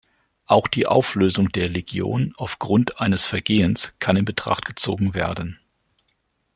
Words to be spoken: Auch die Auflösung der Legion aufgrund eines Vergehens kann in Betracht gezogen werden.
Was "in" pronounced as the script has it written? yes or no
yes